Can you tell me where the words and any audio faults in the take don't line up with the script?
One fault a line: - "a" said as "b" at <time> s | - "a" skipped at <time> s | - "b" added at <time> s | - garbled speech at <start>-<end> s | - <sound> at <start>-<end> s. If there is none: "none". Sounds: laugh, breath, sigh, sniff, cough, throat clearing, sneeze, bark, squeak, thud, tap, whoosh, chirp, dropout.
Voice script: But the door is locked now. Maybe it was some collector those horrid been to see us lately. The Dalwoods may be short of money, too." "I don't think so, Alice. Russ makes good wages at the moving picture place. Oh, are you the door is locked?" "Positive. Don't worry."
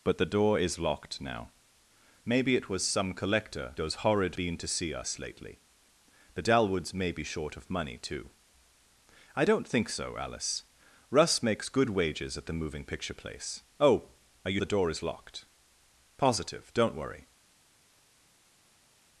none